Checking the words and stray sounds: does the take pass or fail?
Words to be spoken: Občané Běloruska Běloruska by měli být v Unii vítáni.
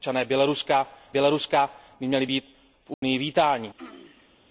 fail